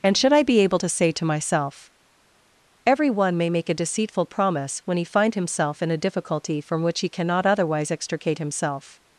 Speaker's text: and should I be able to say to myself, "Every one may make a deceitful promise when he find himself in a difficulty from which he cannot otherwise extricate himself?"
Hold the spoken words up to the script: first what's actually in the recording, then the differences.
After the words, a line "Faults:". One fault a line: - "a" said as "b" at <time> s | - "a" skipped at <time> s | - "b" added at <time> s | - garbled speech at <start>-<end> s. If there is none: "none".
and should I be able to say to myself, "Every one may make a deceitful promise when he find himself in a difficulty from which he cannot otherwise extricate himself?"
Faults:
none